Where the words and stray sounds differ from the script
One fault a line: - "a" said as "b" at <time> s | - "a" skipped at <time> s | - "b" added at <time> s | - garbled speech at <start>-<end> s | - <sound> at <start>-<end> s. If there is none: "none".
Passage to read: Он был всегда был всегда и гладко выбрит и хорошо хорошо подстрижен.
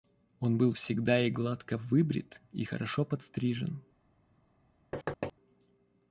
- "был всегда" skipped at 1.2 s
- "хорошо" skipped at 3.0 s
- thud at 4.9-5.3 s